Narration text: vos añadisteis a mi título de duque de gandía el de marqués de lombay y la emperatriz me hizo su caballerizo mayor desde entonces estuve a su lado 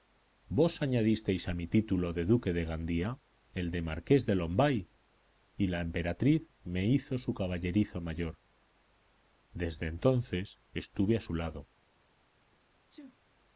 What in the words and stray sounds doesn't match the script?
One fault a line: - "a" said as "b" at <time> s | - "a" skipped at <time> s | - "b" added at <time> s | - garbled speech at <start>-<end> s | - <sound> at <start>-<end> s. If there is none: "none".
- sneeze at 12.9-13.2 s